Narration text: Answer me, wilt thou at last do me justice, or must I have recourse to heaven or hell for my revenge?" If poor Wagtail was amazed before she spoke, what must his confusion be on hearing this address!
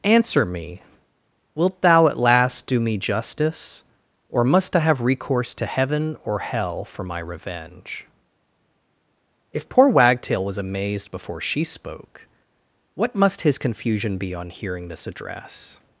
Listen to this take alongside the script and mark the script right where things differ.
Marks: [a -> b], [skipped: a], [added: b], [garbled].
Answer me, wilt thou at last do me justice, or must I have recourse to heaven or hell for my revenge?" If poor Wagtail was amazed before she spoke, what must his confusion be on hearing this address!